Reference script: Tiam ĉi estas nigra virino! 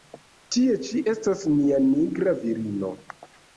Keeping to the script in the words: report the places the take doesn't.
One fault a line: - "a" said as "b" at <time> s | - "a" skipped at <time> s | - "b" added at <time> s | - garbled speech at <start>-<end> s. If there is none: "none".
- "Tiam" said as "Tie" at 0.6 s
- "nia" added at 1.5 s